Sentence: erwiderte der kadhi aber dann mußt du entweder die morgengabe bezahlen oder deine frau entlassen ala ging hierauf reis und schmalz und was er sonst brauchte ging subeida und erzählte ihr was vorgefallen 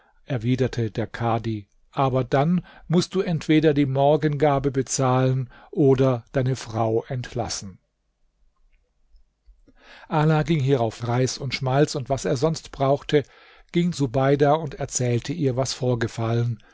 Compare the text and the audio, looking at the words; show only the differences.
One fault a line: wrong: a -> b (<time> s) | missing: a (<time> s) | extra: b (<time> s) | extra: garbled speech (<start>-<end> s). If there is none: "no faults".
no faults